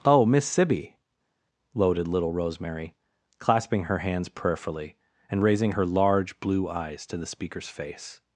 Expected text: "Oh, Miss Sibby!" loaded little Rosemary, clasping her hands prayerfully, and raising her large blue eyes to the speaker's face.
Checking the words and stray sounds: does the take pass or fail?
pass